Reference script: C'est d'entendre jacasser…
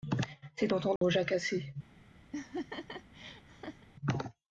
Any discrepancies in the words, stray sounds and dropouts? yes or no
yes